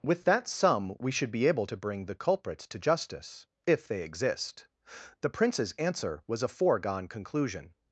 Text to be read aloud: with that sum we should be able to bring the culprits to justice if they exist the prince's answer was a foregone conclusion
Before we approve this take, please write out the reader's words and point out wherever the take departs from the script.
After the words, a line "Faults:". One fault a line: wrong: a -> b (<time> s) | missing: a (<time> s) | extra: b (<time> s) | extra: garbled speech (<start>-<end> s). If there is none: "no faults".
with that sum we should be able to bring the culprits to justice if they exist the prince's answer was a foregone conclusion
Faults:
no faults